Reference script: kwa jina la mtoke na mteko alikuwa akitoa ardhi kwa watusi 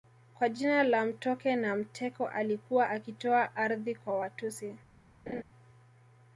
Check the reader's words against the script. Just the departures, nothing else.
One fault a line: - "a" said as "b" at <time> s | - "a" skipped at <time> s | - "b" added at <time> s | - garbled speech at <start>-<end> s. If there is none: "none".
none